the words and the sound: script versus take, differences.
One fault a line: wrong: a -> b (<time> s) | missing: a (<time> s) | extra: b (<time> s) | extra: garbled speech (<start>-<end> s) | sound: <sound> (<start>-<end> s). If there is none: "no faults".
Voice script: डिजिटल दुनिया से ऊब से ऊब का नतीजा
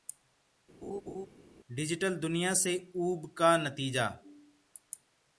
sound: laugh (0.8-1.3 s)
missing: से ऊब (3.3 s)